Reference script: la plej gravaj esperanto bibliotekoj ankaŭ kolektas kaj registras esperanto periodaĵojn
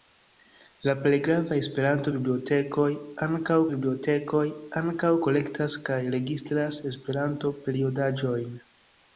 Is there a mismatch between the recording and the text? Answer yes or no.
yes